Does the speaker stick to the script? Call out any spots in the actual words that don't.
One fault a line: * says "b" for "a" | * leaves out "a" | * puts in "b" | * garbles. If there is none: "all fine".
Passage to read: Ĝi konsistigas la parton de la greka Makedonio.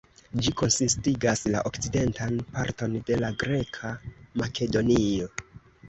* puts in "okcidentan"